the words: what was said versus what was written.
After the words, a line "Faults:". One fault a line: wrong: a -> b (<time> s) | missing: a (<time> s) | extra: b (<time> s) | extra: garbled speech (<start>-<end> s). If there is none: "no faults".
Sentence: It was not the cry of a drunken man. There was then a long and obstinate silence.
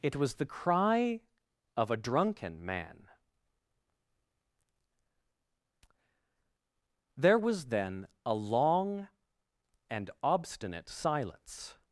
It was the cry of a drunken man. There was then a long and obstinate silence.
Faults:
missing: not (0.3 s)